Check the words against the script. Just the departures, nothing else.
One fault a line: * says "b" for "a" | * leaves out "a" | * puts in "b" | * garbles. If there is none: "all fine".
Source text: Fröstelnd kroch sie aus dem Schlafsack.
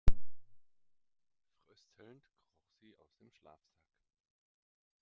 all fine